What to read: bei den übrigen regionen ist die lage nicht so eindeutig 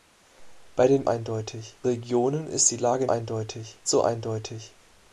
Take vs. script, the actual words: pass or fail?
fail